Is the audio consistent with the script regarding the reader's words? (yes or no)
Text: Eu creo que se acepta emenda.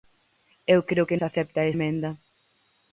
yes